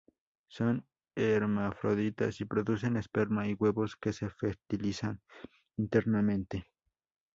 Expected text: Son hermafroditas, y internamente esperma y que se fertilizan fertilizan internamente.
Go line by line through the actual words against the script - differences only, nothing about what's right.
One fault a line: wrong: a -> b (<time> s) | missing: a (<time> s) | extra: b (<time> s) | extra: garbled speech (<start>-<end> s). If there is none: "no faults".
wrong: internamente -> producen (2.5 s)
extra: huevos (3.6 s)
missing: fertilizan (5.2 s)